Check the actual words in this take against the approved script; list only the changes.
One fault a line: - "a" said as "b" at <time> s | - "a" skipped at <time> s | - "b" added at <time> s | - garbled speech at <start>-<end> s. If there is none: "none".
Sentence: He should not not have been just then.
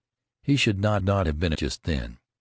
none